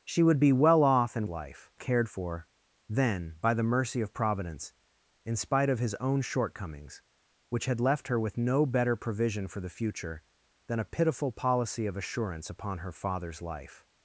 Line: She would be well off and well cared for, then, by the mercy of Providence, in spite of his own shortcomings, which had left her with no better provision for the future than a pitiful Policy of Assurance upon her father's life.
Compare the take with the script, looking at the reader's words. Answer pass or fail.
fail